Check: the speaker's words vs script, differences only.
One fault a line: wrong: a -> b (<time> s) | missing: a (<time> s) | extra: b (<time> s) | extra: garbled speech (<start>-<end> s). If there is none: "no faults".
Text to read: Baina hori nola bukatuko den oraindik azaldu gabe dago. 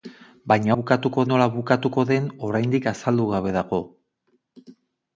wrong: hori -> bukatuko (0.8 s)